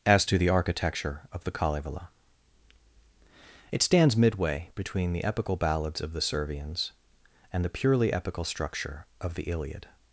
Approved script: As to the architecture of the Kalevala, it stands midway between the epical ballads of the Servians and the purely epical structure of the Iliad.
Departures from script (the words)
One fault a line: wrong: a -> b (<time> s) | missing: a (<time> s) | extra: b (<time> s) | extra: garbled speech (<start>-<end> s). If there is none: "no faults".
no faults